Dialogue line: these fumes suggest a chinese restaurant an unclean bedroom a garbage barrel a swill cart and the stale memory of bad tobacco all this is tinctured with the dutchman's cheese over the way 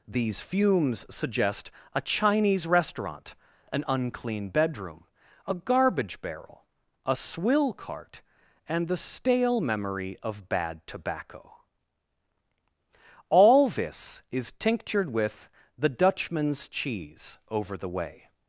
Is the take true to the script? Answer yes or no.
yes